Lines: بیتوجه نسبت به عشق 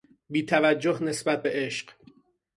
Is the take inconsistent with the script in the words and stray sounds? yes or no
no